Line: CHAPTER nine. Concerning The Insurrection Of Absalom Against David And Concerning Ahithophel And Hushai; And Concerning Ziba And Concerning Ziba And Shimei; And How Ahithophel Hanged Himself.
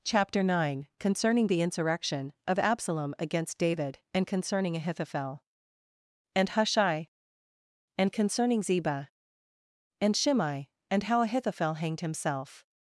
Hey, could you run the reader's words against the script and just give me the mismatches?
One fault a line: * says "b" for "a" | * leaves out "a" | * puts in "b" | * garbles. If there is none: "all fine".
* leaves out "Concerning Ziba And"